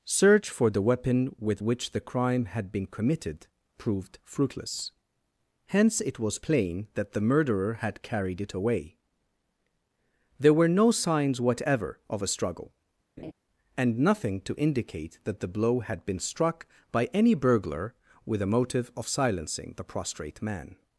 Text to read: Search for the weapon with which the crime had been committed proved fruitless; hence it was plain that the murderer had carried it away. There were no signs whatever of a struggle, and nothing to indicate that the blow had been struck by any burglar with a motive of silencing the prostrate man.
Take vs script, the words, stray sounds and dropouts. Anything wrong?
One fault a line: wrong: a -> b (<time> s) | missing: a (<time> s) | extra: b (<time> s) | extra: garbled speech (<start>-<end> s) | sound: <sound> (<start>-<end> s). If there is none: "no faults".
sound: laugh (13.2-13.3 s)